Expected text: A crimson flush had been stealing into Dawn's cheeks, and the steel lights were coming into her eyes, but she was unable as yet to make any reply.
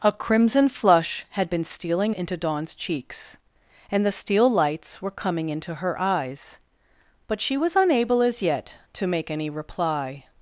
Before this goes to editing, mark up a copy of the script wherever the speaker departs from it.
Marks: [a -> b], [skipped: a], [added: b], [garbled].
A crimson flush had been stealing into Dawn's cheeks, and the steel lights were coming into her eyes, but she was unable as yet to make any reply.